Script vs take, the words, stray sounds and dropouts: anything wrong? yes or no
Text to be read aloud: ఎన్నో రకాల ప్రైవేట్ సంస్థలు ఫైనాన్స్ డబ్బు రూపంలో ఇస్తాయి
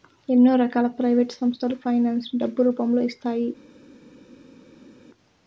yes